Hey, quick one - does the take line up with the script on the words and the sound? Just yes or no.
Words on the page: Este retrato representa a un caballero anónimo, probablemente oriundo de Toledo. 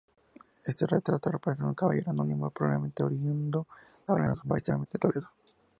no